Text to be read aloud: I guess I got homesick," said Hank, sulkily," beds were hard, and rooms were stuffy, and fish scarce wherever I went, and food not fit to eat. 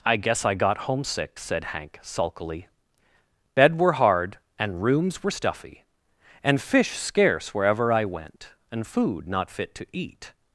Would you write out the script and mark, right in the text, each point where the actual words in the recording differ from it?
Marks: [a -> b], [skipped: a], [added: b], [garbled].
I guess I got homesick," said Hank, sulkily," [beds -> bed] were hard, and rooms were stuffy, and fish scarce wherever I went, and food not fit to eat.